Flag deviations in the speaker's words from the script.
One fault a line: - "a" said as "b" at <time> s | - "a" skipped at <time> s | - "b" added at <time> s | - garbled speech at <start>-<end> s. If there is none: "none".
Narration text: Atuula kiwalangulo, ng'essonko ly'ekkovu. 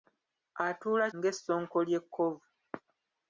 - "kiwalangulo" skipped at 1.1 s